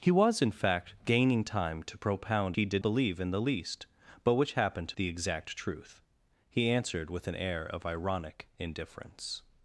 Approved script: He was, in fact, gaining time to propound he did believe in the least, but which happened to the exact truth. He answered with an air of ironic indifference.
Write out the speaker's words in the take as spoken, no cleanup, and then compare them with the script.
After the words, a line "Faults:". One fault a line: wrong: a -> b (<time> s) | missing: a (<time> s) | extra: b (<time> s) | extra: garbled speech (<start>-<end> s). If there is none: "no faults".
He was, in fact, gaining time to propound he did believe in the least, but which happened to the exact truth. He answered with an air of ironic indifference.
Faults:
no faults